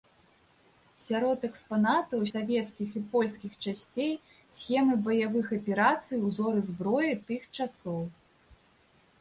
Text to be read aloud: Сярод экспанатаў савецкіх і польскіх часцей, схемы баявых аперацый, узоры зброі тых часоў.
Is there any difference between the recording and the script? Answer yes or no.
no